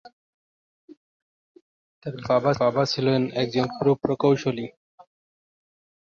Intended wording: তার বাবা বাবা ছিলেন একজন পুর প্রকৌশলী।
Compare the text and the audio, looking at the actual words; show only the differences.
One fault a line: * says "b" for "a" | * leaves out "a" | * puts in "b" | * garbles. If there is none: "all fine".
all fine